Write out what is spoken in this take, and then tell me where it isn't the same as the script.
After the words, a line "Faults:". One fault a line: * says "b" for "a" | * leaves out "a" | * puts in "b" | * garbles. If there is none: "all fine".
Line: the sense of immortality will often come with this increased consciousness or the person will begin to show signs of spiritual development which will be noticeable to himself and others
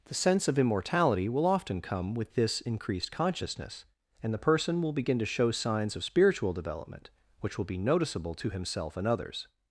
the sense of immortality will often come with this increased consciousness and the person will begin to show signs of spiritual development which will be noticeable to himself and others
Faults:
* says "and" for "or"